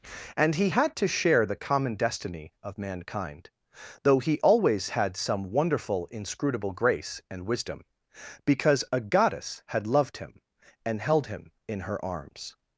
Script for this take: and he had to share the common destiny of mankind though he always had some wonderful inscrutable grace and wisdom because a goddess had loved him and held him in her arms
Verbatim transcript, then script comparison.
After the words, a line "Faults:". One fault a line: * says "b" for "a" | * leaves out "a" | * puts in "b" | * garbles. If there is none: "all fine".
and he had to share the common destiny of mankind though he always had some wonderful inscrutable grace and wisdom because a goddess had loved him and held him in her arms
Faults:
all fine